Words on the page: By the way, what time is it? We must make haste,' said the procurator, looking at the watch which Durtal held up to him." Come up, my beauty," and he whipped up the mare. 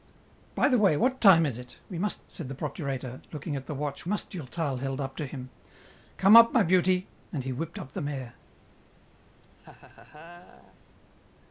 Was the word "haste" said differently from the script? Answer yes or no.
yes